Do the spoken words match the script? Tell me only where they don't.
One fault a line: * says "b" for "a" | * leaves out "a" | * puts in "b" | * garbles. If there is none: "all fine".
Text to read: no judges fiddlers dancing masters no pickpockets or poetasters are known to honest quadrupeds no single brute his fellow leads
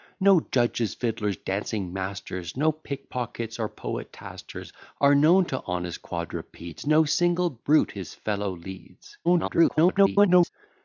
* garbles